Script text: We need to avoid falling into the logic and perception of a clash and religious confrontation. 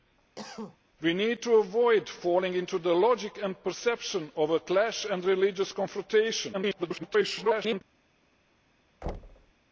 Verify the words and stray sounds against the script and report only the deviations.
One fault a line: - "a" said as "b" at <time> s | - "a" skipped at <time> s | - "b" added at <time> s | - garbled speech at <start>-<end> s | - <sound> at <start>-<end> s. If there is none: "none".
- cough at 0.4-0.8 s
- garbled speech at 6.5-7.8 s
- thud at 9.0-9.5 s